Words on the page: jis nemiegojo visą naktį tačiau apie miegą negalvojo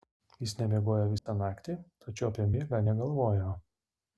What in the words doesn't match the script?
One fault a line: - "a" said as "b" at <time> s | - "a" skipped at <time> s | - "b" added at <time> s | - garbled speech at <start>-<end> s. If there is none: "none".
none